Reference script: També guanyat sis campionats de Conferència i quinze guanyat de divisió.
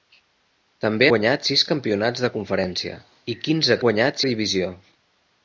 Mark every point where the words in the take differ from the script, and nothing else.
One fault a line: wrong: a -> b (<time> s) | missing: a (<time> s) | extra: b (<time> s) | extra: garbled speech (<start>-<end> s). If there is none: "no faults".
no faults